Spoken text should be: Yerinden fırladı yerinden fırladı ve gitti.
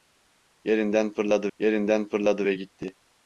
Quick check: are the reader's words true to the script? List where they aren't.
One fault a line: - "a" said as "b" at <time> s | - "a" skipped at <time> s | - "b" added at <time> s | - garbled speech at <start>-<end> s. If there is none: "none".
none